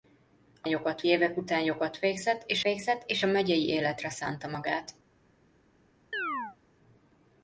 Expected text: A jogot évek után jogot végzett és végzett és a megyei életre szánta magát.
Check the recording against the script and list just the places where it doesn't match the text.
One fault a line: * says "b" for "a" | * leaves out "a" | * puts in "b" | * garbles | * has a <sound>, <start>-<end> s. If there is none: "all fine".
* has a chirp, 6.1-6.6 s